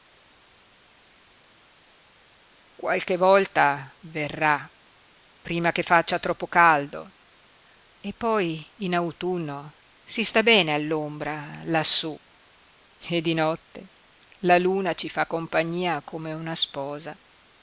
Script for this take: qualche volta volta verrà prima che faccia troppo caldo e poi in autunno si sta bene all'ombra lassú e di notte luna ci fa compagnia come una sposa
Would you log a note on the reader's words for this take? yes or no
yes